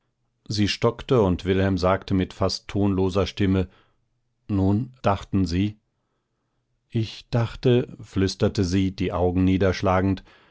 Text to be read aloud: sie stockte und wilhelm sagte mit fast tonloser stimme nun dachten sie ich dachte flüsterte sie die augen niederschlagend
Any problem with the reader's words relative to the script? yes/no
no